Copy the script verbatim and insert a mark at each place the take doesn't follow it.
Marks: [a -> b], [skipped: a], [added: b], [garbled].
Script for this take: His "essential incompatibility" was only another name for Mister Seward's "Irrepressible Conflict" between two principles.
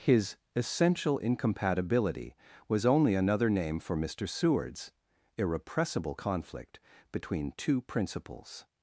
His "essential incompatibility" was only another name for Mister Seward's "Irrepressible Conflict" between two principles.